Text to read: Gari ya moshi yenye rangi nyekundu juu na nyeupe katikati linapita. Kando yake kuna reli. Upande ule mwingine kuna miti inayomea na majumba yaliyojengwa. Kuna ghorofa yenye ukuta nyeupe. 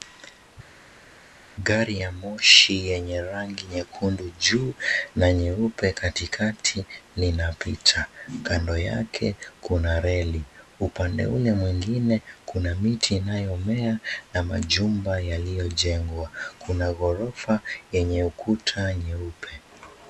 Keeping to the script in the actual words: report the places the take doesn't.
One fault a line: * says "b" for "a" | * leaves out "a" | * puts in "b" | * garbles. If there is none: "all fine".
all fine